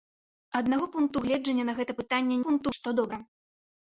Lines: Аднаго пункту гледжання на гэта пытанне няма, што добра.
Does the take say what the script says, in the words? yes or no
no